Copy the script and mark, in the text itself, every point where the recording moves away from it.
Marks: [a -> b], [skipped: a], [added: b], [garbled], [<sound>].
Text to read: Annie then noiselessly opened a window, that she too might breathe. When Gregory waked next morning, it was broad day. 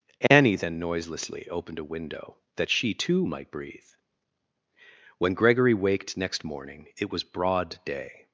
Annie then noiselessly opened a window, that she too might breathe. When Gregory waked next morning, it was broad day.